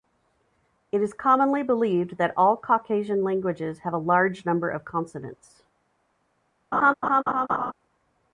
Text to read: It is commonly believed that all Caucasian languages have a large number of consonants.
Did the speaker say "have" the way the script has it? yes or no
yes